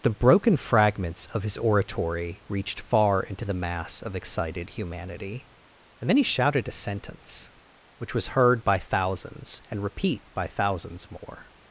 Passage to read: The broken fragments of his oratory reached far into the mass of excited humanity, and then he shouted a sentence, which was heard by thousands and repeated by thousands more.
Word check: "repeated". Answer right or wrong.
wrong